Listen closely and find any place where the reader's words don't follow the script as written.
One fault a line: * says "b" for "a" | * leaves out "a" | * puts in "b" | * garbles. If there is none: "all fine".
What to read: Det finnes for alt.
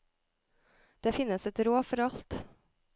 * puts in "et råd"